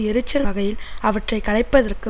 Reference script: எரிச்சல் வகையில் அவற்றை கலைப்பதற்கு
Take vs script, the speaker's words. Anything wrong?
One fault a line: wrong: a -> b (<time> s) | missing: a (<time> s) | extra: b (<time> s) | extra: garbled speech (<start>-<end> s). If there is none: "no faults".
no faults